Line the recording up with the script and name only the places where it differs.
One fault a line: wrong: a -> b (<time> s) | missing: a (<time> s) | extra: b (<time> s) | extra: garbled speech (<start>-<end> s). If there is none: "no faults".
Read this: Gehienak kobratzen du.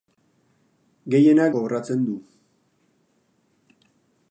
no faults